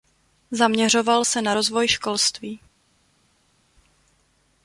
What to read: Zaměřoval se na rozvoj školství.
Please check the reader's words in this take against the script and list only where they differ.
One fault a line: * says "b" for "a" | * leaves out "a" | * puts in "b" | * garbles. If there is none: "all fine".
all fine